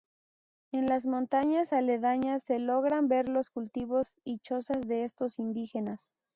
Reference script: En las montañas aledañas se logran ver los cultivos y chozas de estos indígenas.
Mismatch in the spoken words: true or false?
false